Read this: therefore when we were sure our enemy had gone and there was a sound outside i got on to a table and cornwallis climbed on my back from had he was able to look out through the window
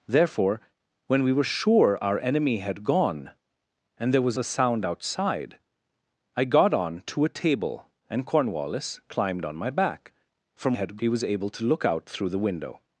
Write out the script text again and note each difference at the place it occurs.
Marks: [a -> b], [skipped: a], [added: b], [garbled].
therefore when we were sure our enemy had gone and there was a sound outside i got on to a table and cornwallis climbed on my back from had he was able to look out through the window